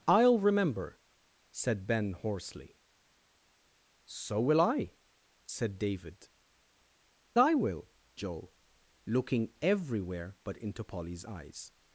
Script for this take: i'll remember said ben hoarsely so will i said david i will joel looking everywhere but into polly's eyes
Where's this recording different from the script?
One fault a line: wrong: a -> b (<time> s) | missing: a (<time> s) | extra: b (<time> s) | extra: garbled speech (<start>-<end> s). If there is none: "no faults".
no faults